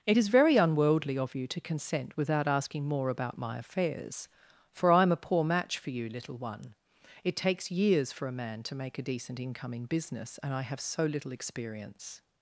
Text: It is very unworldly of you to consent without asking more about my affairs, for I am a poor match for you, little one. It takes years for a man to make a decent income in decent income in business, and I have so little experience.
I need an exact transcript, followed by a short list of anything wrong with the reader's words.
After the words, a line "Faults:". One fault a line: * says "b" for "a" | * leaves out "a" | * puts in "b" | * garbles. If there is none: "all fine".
It is very unworldly of you to consent without asking more about my affairs, for I am a poor match for you, little one. It takes years for a man to make a decent income in business, and I have so little experience.
Faults:
* leaves out "decent income in"